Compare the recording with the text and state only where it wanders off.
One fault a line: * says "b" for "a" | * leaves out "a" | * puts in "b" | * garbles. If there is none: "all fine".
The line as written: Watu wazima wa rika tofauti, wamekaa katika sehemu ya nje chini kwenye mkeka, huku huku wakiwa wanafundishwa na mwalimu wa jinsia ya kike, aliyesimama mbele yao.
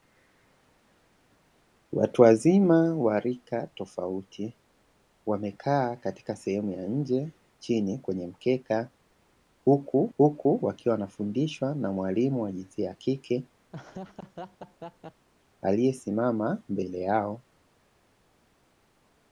all fine